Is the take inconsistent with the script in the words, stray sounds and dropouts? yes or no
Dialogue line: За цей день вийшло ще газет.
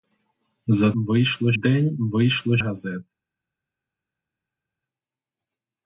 yes